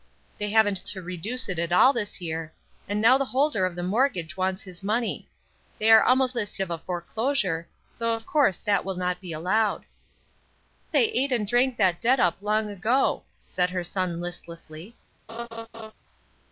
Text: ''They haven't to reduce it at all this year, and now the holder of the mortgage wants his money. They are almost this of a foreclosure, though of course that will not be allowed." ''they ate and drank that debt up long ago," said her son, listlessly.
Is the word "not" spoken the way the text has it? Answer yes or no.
yes